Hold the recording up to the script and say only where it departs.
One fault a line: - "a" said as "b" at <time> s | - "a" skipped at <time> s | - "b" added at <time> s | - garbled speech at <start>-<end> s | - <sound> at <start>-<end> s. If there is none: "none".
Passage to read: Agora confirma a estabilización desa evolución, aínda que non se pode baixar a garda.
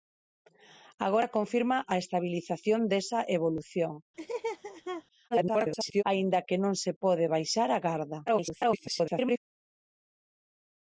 - laugh at 4.2-5.0 s
- garbled speech at 5.3-6.0 s
- garbled speech at 8.3-9.4 s